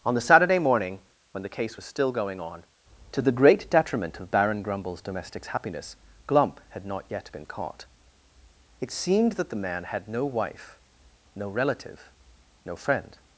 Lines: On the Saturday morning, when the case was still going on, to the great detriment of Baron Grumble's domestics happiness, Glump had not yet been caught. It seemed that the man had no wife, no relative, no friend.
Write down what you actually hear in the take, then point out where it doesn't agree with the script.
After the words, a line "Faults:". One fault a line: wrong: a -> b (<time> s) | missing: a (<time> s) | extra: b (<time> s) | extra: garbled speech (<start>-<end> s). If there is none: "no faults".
On the Saturday morning, when the case was still going on, to the great detriment of Baron Grumble's domestics happiness, Glump had not yet been caught. It seemed that the man had no wife, no relative, no friend.
Faults:
no faults